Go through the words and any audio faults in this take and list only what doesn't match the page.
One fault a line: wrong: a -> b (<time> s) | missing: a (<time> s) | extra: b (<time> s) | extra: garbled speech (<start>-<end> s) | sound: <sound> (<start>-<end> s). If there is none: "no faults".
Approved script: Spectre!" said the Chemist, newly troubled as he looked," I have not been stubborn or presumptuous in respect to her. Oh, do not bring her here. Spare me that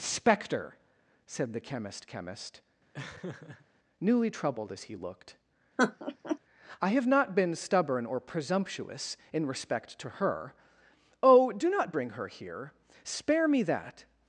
extra: Chemist (2.1 s)
sound: laugh (2.9-3.7 s)
sound: laugh (5.8-6.4 s)